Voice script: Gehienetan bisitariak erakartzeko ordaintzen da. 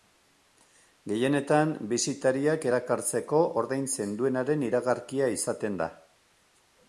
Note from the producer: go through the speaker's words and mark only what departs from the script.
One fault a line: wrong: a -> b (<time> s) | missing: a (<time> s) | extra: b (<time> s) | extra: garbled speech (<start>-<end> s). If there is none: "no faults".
extra: duenaren iragarkia izaten (4.2 s)